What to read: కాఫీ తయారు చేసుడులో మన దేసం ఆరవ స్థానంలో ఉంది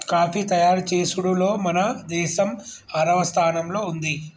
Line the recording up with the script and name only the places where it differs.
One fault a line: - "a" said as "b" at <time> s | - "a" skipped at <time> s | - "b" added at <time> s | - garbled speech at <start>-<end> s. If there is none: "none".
none